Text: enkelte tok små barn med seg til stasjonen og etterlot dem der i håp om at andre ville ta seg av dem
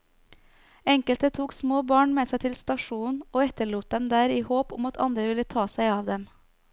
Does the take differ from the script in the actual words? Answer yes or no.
no